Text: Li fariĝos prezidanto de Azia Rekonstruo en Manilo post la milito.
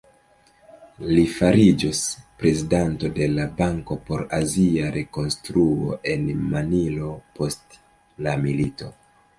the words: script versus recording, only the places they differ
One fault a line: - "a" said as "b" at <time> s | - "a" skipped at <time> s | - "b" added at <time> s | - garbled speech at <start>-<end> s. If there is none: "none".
- "la Banko por" added at 3.4 s